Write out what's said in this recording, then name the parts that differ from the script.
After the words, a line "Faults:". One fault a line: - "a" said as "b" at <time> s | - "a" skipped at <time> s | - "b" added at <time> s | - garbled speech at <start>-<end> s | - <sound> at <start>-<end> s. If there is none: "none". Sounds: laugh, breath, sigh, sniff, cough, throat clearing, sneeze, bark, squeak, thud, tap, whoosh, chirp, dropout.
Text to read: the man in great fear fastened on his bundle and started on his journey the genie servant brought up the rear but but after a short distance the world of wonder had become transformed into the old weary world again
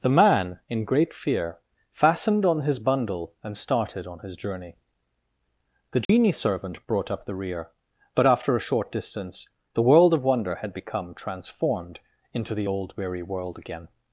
the man in great fear fastened on his bundle and started on his journey the genie servant brought up the rear but after a short distance the world of wonder had become transformed into the old weary world again
Faults:
- dropout at 6.0-6.1 s
- "but" skipped at 8.3 s